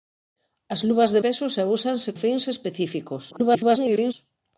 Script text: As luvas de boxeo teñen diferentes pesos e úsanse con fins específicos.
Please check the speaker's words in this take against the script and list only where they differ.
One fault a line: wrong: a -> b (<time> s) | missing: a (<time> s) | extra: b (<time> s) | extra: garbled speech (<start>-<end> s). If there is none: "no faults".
missing: boxeo teñen diferentes (1.2 s)
missing: con (2.1 s)
extra: garbled speech (3.3-4.1 s)